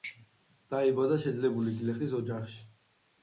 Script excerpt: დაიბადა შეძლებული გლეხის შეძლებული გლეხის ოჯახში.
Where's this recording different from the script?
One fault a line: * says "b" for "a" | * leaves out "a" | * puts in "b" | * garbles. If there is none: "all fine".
* leaves out "შეძლებული გლეხის"